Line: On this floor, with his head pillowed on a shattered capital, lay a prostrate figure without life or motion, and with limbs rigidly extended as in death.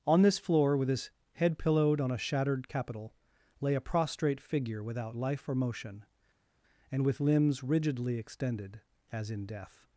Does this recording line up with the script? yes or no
yes